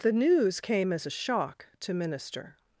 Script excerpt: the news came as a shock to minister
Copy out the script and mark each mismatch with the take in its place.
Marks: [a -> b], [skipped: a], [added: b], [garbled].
the news came as a shock to minister